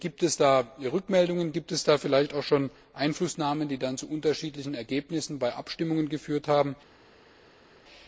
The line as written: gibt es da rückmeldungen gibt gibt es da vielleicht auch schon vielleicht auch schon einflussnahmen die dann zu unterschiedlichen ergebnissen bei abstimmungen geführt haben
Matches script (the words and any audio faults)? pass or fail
fail